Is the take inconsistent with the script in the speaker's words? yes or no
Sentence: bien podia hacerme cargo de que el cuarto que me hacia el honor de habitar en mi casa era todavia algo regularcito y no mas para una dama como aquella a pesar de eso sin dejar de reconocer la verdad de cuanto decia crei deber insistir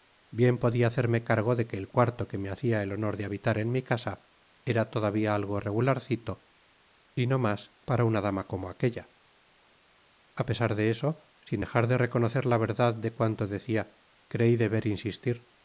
no